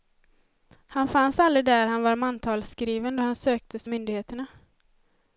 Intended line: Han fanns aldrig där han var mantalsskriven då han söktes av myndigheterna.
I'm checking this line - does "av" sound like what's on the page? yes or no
no